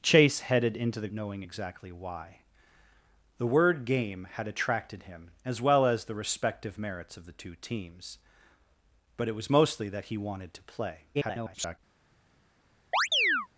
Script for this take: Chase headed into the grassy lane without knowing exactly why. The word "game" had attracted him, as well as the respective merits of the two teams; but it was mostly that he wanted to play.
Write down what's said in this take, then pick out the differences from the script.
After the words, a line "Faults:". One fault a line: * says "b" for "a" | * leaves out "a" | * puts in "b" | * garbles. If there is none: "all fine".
Chase headed into the knowing exactly why. The word "game" had attracted him, as well as the respective merits of the two teams; but it was mostly that he wanted to play. [garbled]
Faults:
* leaves out "grassy lane without"
* garbles